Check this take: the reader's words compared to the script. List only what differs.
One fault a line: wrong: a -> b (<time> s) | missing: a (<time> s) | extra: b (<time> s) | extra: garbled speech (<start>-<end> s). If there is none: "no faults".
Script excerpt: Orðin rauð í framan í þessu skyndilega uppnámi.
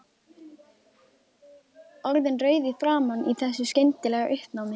no faults